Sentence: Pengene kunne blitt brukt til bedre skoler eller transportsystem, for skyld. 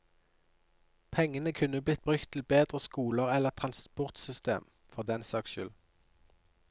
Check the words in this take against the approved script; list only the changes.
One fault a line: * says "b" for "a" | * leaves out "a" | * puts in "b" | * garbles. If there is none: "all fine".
* puts in "den saks"